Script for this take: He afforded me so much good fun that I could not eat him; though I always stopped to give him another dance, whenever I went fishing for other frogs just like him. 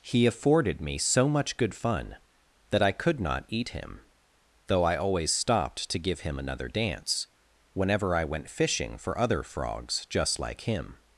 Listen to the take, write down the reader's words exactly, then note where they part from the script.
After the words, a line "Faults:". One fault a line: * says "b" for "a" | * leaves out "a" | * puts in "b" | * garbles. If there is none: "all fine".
He afforded me so much good fun that I could not eat him; though I always stopped to give him another dance, whenever I went fishing for other frogs just like him.
Faults:
all fine